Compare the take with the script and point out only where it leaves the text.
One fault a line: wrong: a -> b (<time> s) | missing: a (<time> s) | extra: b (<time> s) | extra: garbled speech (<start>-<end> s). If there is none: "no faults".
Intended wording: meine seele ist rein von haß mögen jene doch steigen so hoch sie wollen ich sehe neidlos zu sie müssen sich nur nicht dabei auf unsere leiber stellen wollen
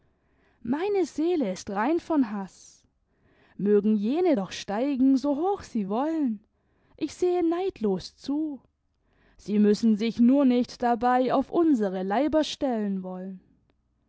no faults